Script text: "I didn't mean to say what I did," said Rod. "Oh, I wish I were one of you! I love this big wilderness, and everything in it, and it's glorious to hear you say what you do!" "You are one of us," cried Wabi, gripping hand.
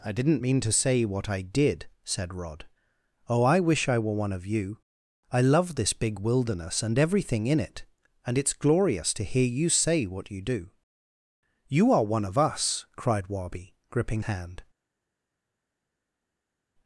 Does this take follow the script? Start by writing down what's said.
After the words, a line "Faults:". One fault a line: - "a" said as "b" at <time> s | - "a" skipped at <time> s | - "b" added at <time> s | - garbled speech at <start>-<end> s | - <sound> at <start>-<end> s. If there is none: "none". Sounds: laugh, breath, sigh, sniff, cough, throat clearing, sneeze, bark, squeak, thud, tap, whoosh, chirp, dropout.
"I didn't mean to say what I did," said Rod. "Oh, I wish I were one of you! I love this big wilderness, and everything in it, and it's glorious to hear you say what you do!" "You are one of us," cried Wabi, gripping hand.
Faults:
none